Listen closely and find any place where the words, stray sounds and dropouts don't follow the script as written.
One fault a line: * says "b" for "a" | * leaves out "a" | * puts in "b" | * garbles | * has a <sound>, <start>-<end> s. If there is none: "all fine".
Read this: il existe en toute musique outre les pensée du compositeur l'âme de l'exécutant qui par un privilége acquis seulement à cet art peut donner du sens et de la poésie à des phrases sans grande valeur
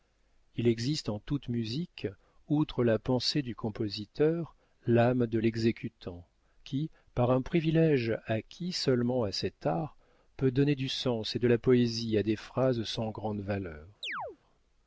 * says "la" for "les"
* has a chirp, 14.0-14.4 s